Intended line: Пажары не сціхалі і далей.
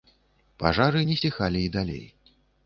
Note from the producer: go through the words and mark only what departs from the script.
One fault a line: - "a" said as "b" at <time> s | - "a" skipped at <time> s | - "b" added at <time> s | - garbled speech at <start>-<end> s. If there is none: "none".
none